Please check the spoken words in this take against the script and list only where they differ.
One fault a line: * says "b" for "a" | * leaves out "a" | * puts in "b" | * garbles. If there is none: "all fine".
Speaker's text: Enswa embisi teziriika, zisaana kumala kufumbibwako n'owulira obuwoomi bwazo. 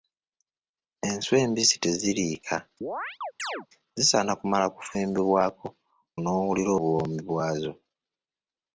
all fine